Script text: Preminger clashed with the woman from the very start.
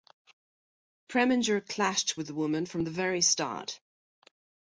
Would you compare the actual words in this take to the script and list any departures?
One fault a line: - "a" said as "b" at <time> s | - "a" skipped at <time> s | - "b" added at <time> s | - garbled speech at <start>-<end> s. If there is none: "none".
none